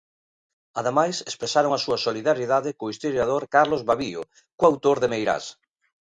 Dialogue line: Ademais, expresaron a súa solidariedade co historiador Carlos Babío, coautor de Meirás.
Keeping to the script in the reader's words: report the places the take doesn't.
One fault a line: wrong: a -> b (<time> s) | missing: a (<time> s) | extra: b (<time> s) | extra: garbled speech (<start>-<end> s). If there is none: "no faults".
no faults